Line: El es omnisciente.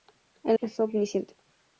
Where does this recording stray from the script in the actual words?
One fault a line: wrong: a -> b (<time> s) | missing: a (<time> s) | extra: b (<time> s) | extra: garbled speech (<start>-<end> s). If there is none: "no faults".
no faults